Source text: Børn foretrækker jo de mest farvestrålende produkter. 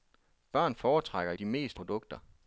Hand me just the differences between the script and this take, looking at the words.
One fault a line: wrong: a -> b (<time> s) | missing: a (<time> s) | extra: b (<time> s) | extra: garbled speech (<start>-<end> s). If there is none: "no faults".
missing: jo (1.3 s)
missing: farvestrålende (1.8 s)